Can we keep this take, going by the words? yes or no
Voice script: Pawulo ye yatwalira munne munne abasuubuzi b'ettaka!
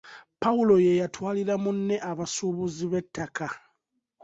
no